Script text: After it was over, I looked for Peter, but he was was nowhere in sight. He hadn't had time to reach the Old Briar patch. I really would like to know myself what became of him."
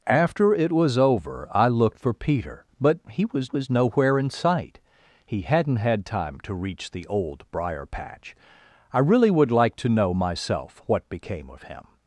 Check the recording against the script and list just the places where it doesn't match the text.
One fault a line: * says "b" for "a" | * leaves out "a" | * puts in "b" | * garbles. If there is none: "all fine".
all fine